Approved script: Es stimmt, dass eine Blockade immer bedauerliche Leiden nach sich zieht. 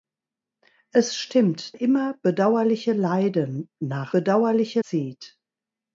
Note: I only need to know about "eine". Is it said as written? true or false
false